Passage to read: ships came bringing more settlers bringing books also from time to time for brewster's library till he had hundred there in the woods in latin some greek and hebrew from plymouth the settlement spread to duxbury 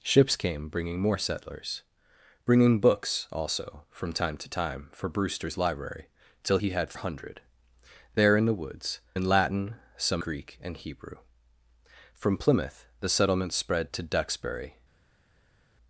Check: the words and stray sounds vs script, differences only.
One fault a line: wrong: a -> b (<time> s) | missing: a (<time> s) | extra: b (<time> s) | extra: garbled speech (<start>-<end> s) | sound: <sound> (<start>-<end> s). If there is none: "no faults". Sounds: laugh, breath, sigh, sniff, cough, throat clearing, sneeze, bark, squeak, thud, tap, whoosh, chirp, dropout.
no faults